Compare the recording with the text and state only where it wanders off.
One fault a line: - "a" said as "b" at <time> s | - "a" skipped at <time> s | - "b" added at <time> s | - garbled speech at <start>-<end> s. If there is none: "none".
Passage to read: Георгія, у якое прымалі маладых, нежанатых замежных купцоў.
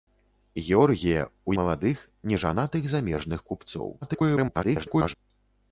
- "якое прымалі" skipped at 1.5 s
- garbled speech at 4.0-5.1 s